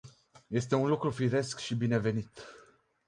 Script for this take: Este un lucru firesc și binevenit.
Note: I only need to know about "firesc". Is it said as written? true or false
true